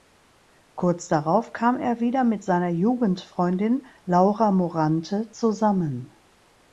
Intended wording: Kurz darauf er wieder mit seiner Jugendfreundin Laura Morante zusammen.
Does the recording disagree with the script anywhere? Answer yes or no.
yes